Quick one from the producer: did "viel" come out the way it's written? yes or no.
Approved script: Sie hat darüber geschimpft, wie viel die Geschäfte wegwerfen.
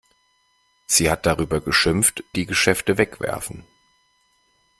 no